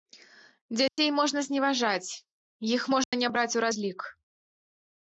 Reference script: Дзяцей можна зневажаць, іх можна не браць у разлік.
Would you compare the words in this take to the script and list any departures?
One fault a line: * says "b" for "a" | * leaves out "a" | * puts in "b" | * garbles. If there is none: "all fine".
all fine